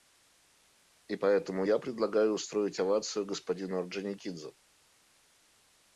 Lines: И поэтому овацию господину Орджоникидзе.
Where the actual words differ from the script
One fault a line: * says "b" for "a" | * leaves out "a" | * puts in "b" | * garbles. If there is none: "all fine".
* puts in "я предлагаю устроить"